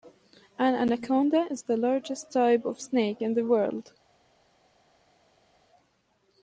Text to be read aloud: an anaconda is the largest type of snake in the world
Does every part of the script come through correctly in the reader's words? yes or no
yes